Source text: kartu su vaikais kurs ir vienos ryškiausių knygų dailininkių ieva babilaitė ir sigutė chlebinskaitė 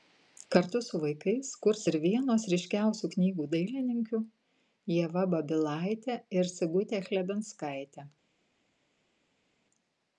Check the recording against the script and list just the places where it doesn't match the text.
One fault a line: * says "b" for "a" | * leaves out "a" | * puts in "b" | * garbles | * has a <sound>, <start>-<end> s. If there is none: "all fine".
all fine